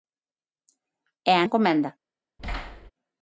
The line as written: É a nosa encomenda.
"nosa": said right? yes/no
no